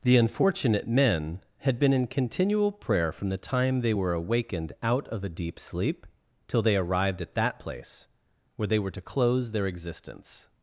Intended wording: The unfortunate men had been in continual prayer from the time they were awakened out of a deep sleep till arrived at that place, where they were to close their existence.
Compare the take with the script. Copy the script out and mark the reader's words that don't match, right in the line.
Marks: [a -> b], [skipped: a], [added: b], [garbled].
The unfortunate men had been in continual prayer from the time they were awakened out of a deep sleep till [added: they] arrived at that place, where they were to close their existence.